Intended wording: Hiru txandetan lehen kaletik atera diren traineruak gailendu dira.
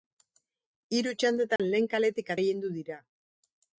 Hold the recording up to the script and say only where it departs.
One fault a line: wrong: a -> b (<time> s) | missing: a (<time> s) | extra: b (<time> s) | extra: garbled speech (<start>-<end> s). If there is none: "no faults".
missing: atera diren traineruak (2.3 s)